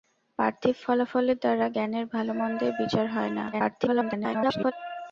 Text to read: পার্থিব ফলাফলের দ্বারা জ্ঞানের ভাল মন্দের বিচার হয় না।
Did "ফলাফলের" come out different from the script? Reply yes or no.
no